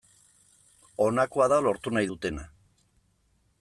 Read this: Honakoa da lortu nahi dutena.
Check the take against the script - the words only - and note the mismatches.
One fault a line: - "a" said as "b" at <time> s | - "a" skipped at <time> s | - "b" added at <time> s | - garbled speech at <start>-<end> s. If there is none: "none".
none